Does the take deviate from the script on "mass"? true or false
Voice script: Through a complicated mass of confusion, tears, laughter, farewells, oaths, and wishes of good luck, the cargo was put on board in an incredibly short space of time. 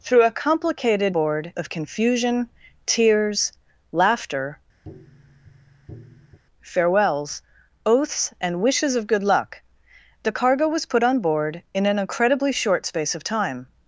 true